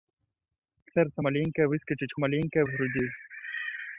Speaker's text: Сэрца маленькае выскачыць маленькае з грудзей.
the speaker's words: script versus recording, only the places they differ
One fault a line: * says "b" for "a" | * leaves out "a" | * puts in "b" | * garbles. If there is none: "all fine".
all fine